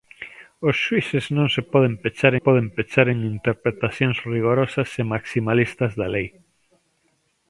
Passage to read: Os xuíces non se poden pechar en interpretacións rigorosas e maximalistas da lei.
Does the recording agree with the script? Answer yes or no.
no